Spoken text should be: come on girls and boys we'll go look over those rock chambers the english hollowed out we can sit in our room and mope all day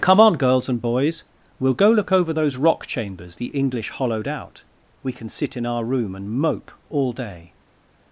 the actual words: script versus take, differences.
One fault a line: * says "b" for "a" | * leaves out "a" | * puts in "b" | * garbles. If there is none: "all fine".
all fine